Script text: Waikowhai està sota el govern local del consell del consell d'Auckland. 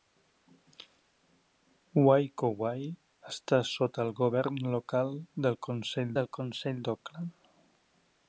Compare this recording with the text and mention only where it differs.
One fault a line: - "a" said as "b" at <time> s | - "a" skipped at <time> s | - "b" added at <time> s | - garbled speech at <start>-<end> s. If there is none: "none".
none